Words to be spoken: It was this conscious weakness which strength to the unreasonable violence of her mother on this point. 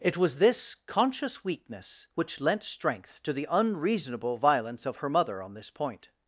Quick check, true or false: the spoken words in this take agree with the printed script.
false